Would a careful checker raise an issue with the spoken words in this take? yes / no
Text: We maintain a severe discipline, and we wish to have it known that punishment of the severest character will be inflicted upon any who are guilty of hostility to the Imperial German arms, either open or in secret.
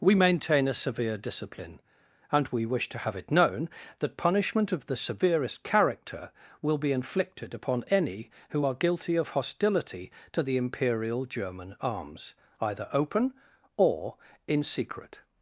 no